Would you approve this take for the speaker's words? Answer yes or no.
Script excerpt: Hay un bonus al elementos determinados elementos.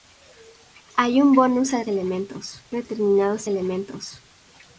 yes